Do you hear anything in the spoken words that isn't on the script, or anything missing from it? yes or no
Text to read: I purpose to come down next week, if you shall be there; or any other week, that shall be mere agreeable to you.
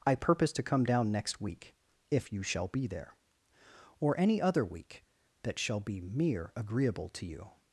no